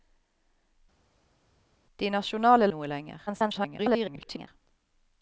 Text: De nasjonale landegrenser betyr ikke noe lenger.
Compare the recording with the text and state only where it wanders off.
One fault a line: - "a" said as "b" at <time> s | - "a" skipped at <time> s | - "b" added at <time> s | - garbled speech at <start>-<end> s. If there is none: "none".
- "landegrenser betyr ikke" skipped at 2.7 s
- garbled speech at 3.3-4.5 s